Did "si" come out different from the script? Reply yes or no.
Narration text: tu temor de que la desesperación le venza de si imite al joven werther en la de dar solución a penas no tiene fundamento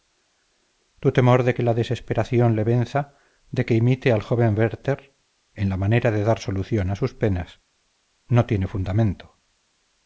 yes